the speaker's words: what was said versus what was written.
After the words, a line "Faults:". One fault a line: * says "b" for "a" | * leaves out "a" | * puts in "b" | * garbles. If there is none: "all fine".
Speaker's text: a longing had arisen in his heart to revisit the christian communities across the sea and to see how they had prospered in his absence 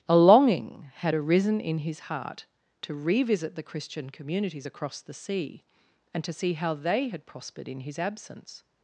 a longing had arisen in his heart to revisit the christian communities across the sea and to see how they had prospered in his absence
Faults:
all fine